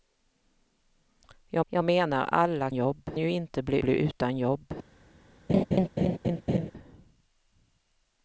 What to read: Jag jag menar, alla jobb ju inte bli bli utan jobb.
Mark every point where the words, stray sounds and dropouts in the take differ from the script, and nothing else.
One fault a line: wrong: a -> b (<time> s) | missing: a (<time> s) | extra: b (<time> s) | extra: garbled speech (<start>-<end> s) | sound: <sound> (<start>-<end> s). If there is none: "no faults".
sound: laugh (5.5-6.7 s)